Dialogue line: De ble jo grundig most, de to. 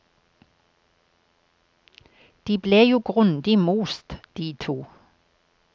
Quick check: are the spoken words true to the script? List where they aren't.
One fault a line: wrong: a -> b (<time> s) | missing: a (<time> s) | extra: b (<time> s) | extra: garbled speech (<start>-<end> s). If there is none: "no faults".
no faults